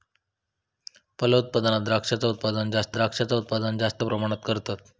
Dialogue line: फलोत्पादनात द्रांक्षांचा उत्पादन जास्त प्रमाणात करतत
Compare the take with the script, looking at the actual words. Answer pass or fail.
fail